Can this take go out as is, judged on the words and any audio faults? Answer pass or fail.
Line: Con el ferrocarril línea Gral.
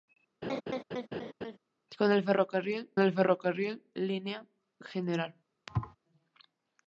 fail